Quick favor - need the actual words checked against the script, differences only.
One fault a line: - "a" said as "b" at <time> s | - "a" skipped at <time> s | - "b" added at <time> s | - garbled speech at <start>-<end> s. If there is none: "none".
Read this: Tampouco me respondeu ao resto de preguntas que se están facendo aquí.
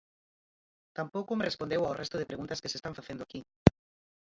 none